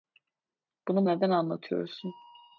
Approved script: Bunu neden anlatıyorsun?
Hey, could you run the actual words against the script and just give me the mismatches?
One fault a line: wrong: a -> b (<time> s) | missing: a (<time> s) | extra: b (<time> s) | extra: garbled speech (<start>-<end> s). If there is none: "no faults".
no faults